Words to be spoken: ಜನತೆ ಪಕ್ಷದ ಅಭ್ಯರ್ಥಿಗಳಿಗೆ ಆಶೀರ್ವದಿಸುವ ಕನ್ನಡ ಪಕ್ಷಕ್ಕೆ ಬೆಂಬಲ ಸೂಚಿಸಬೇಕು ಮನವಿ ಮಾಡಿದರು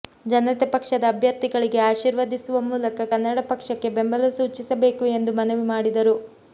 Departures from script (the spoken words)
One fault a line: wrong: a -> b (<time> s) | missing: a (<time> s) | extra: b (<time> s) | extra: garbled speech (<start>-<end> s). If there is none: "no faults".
extra: ಮೂಲಕ (2.7 s)
extra: ಎಂದು (5.2 s)